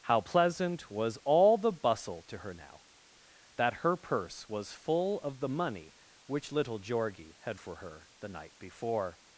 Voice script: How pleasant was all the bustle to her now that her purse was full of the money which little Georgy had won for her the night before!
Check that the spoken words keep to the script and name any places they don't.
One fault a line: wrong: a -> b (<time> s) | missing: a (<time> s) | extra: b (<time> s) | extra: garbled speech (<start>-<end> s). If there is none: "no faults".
missing: won (7.6 s)